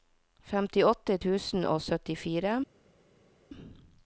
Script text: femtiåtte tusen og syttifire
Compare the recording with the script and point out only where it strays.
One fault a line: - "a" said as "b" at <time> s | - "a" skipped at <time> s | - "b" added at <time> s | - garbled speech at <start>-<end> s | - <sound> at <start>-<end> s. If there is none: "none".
none